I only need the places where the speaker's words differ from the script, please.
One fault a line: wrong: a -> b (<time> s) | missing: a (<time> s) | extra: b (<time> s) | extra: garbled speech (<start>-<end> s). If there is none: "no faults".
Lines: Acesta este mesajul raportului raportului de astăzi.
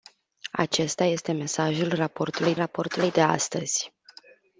no faults